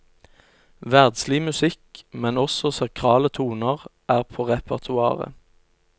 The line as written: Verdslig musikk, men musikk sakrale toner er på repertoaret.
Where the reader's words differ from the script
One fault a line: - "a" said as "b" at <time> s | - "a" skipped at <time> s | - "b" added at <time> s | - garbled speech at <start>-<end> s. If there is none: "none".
- "musikk" said as "også" at 2.4 s